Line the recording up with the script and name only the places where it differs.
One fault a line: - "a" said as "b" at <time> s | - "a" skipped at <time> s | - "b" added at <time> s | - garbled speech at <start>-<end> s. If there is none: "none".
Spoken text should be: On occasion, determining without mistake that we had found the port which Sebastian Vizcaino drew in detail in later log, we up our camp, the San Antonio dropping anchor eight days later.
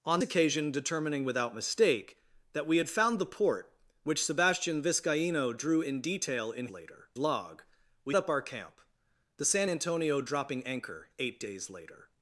none